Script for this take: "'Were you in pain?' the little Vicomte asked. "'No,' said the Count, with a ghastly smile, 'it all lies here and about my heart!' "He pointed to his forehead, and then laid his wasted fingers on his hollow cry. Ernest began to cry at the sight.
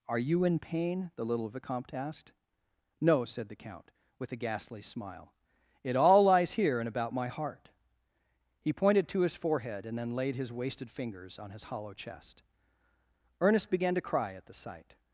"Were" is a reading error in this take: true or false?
true